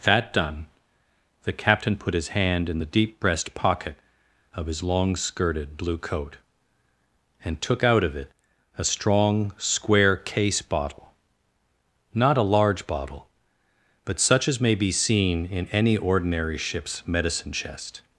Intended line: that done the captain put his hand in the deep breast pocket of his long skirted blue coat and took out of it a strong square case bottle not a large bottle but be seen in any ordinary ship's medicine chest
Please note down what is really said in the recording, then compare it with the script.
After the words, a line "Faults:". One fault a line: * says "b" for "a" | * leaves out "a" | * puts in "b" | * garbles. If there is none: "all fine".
that done the captain put his hand in the deep breast pocket of his long skirted blue coat and took out of it a strong square case bottle not a large bottle but such as may be seen in any ordinary ship's medicine chest
Faults:
* puts in "such as may"